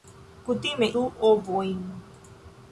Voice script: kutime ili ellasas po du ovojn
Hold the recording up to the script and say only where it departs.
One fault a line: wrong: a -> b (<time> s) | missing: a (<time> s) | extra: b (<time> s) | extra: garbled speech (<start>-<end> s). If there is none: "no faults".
missing: ili ellasas po (0.9 s)